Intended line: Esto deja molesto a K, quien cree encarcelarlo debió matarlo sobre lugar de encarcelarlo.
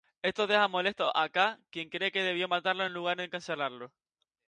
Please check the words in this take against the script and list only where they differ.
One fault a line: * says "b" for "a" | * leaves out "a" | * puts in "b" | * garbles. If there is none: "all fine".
* says "que" for "encarcelarlo"
* says "en" for "sobre"